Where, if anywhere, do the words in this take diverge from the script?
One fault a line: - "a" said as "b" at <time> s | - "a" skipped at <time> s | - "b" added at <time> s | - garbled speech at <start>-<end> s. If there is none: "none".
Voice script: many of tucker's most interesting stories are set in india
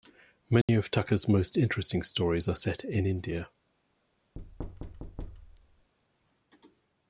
none